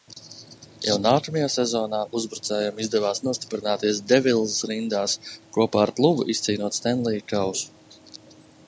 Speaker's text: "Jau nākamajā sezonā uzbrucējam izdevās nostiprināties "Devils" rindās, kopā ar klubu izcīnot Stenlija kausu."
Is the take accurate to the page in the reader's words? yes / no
yes